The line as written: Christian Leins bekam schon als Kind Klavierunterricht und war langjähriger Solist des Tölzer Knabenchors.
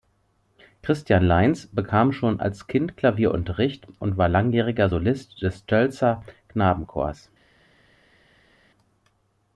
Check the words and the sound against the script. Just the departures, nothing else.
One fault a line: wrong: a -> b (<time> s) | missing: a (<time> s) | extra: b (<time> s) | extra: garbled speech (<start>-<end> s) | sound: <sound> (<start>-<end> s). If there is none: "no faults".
no faults